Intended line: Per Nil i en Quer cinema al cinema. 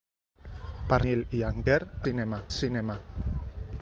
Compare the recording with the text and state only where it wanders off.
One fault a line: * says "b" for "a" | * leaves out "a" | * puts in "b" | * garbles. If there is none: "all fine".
all fine